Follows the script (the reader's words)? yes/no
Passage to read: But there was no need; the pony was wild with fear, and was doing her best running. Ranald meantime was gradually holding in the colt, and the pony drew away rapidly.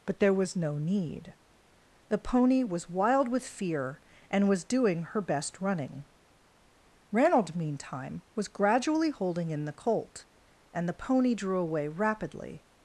yes